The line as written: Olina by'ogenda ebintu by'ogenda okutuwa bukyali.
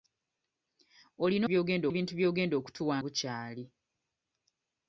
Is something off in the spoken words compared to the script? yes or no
no